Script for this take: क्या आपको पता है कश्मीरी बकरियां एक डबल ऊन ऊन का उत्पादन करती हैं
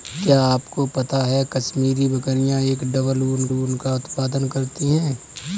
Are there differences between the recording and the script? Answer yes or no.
no